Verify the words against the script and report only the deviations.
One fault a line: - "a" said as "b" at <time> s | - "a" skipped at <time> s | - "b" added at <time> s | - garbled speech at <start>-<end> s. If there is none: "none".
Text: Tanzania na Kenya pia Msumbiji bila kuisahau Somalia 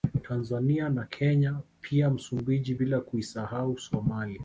none